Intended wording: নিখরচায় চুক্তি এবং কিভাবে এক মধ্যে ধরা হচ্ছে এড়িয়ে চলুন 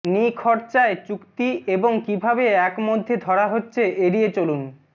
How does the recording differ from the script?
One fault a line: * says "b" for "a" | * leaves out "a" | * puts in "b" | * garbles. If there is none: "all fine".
all fine